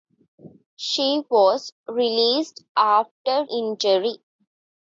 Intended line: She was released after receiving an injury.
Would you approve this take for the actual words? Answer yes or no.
no